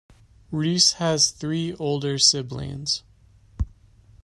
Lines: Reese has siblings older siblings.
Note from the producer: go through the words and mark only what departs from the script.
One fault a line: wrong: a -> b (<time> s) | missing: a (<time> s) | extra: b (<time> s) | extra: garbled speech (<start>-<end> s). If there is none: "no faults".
wrong: siblings -> three (1.3 s)